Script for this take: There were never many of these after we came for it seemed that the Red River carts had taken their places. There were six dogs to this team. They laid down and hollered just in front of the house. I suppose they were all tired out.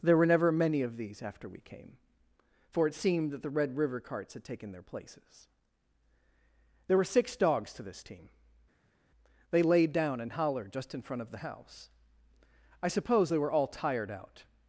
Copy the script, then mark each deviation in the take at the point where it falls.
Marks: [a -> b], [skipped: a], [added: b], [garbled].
There were never many of these after we came for it seemed that the Red River carts had taken their places. There were six dogs to this team. They laid down and hollered just in front of the house. I suppose they were all tired out.